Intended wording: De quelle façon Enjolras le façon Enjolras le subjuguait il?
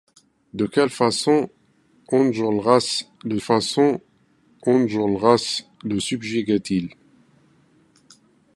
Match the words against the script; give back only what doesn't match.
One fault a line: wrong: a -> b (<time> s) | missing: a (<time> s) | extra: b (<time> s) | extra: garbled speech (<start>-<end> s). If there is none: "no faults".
no faults